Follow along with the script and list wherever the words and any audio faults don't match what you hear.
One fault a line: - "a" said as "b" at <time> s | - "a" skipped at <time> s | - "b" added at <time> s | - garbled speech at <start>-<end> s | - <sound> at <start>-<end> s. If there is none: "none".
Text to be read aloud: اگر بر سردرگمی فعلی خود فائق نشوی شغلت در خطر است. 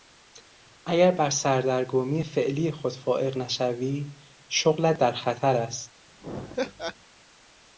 - laugh at 6.2-7.0 s